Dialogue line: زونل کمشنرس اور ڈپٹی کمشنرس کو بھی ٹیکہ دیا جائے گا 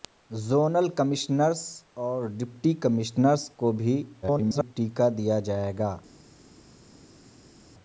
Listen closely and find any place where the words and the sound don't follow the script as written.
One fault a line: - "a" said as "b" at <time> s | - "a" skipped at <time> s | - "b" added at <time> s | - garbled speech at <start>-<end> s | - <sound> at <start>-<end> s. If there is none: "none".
- garbled speech at 4.2-4.7 s